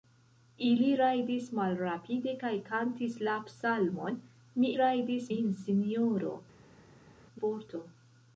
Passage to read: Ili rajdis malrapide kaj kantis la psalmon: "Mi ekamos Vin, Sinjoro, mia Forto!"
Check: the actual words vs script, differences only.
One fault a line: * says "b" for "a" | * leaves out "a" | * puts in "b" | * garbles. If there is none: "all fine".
* says "rajdis" for "ekamos"
* leaves out "mia"